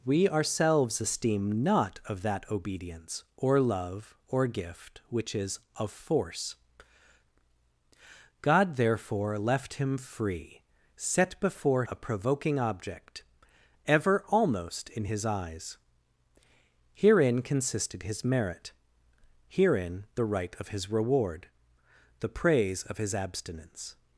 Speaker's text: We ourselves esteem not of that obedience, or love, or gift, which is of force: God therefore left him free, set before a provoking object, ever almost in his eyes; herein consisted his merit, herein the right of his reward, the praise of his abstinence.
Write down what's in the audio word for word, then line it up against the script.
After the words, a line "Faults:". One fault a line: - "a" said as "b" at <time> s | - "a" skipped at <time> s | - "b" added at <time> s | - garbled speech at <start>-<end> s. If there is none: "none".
We ourselves esteem not of that obedience, or love, or gift, which is of force: God therefore left him free, set before a provoking object, ever almost in his eyes; herein consisted his merit, herein the right of his reward, the praise of his abstinence.
Faults:
none